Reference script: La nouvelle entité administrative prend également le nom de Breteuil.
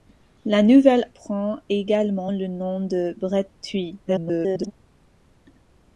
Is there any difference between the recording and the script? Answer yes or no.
yes